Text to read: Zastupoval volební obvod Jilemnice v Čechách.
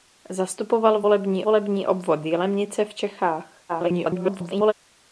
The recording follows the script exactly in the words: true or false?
false